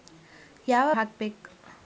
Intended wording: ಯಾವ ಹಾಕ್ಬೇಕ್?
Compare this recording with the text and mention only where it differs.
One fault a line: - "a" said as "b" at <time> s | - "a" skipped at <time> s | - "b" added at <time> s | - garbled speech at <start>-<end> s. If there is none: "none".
none